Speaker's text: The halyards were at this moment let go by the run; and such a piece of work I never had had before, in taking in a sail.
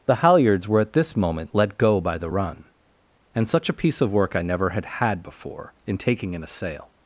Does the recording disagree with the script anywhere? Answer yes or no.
no